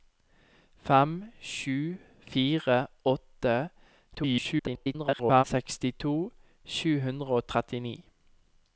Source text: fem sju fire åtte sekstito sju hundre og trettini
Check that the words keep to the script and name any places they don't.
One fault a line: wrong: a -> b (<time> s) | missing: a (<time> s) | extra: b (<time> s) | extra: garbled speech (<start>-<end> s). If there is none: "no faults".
extra: garbled speech (4.1-5.4 s)